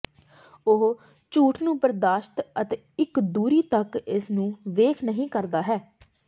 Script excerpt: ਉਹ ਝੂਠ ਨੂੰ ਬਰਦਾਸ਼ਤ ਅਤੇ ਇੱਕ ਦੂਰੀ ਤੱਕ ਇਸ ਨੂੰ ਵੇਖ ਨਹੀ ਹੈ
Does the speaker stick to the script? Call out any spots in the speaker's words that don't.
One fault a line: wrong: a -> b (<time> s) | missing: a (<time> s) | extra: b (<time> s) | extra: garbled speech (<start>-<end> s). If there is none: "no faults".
extra: ਕਰਦਾ (5.3 s)